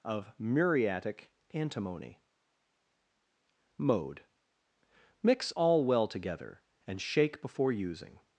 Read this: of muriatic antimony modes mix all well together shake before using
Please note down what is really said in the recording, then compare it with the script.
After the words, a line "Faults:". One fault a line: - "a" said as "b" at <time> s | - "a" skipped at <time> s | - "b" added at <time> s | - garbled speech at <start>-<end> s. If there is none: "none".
of muriatic antimony mode mix all well together and shake before using
Faults:
- "modes" said as "mode" at 3.8 s
- "and" added at 6.8 s